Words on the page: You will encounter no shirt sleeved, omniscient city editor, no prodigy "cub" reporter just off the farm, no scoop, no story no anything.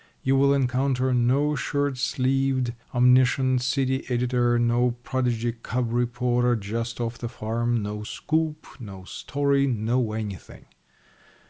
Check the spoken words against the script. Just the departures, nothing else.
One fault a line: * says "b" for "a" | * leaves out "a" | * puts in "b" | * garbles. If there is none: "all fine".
all fine